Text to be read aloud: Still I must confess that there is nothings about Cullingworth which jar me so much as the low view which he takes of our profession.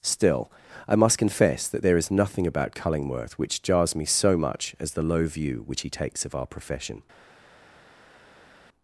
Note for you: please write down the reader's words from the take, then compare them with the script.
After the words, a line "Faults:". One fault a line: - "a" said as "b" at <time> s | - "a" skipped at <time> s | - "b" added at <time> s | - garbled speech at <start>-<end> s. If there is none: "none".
Still I must confess that there is nothing about Cullingworth which jars me so much as the low view which he takes of our profession.
Faults:
- "nothings" said as "nothing" at 2.1 s
- "jar" said as "jars" at 3.6 s